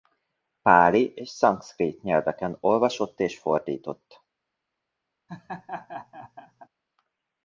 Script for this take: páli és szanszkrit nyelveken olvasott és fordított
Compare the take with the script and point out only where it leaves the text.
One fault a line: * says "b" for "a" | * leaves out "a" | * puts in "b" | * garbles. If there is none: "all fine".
all fine